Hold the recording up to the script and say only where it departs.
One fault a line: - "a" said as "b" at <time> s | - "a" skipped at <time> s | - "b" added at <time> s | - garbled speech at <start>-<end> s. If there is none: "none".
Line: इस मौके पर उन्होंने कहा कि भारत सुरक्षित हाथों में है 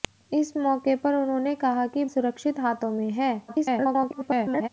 - "भारत" skipped at 2.0 s
- garbled speech at 3.5-4.7 s